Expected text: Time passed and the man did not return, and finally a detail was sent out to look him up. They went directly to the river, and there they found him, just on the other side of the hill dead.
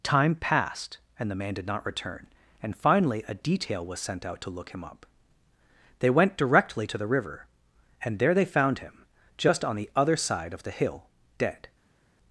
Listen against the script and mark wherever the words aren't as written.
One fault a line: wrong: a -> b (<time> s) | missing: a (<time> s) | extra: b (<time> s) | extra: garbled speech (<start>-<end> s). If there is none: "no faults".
no faults